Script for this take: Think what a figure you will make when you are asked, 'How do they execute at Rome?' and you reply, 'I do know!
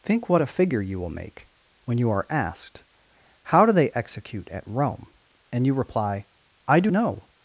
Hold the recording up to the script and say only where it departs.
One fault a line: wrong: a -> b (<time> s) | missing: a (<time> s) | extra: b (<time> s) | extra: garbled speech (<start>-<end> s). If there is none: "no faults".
no faults